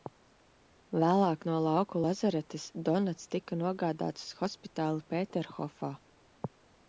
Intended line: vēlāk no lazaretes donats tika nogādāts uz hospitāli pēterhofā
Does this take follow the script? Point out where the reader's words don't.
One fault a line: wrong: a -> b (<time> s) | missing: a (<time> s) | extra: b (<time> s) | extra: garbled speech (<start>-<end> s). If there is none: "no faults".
extra: lauku (1.6 s)